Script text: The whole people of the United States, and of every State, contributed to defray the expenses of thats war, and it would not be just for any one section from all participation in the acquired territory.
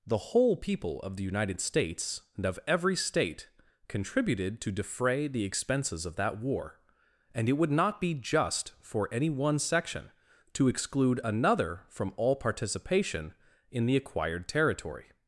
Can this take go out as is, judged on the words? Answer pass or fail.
fail